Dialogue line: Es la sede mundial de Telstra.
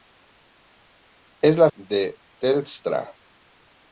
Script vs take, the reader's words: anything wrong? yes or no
yes